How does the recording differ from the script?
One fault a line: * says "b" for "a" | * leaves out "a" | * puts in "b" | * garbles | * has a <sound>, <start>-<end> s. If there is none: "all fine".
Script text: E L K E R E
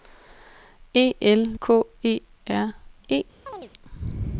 * has a chirp, 3.5-3.7 s